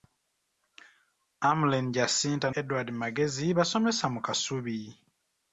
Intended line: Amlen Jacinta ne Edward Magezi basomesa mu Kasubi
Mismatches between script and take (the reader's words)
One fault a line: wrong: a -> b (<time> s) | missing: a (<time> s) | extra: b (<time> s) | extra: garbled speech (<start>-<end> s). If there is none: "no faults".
missing: ne (2.5 s)